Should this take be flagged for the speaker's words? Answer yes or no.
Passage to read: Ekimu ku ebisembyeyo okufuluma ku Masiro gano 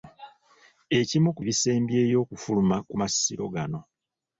no